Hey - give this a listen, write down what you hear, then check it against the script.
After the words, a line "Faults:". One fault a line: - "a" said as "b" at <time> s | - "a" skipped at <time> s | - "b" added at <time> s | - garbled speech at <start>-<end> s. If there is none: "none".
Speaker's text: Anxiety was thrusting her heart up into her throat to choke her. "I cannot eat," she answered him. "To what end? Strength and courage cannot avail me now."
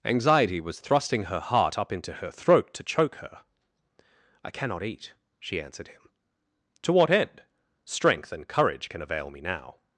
Anxiety was thrusting her heart up into her throat to choke her. "I cannot eat," she answered him. "To what end? Strength and courage can avail me now."
Faults:
- "cannot" said as "can" at 8.9 s